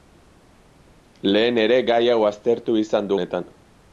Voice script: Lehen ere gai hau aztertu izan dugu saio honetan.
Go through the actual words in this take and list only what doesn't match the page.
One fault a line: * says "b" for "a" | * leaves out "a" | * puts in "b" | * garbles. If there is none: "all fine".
* leaves out "dugu saio"